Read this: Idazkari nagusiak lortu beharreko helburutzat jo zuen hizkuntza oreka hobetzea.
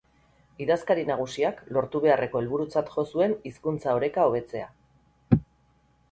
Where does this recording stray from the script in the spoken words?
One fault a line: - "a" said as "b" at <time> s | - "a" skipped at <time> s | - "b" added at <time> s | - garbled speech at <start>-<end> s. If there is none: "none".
none